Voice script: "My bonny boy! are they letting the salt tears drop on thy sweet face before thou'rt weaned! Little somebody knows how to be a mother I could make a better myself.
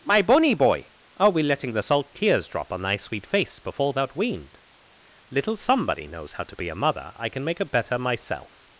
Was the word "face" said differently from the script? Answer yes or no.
no